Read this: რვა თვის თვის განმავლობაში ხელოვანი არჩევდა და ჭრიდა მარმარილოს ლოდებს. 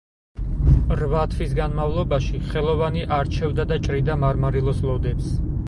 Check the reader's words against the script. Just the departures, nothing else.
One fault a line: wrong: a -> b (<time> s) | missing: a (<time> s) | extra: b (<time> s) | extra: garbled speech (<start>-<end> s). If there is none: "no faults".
missing: თვის (1.5 s)